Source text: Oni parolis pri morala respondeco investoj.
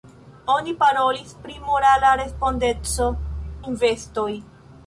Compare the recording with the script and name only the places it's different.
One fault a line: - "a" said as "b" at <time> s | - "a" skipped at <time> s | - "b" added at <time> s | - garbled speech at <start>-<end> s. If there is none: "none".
none